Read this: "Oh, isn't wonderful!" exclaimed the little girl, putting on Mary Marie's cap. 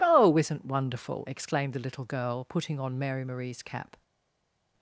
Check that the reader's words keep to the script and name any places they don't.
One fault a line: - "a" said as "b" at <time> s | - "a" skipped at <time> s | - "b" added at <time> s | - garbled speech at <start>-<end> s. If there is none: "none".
none